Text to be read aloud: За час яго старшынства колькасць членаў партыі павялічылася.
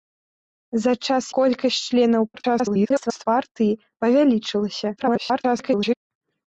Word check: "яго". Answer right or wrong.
wrong